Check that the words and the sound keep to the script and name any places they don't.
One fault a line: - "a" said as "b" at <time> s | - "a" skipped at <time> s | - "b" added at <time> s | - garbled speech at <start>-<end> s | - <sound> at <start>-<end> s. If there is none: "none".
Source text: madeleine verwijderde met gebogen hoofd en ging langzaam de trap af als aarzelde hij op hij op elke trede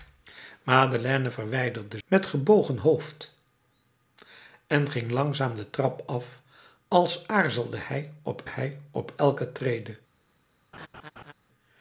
- laugh at 10.7-11.3 s